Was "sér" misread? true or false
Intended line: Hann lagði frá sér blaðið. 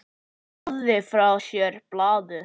false